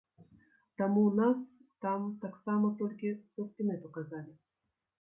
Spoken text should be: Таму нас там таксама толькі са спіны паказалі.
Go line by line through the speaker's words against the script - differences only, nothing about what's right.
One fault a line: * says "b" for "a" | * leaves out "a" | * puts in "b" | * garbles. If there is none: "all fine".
all fine